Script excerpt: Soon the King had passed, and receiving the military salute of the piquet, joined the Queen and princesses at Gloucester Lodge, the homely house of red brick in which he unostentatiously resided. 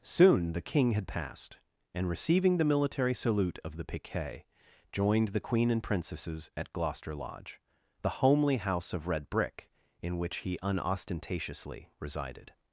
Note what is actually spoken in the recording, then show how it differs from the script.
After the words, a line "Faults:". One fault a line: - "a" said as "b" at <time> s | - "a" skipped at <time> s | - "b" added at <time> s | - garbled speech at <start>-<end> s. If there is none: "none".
Soon the King had passed, and receiving the military salute of the piquet, joined the Queen and princesses at Gloucester Lodge, the homely house of red brick in which he unostentatiously resided.
Faults:
none